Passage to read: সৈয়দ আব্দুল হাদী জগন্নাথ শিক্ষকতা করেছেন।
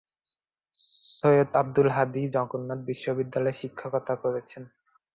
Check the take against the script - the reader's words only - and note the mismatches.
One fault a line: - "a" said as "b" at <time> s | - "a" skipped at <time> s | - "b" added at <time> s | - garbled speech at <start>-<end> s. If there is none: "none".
- "বিশ্ববিদ্যালয়ে" added at 2.9 s